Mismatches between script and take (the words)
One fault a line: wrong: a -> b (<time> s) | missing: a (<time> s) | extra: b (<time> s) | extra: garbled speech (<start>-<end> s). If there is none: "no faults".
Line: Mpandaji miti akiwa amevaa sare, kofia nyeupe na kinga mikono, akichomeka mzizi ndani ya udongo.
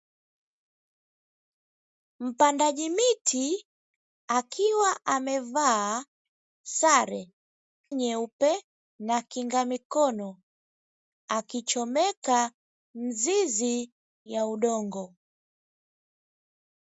missing: kofia (7.2 s)
missing: ndani (13.8 s)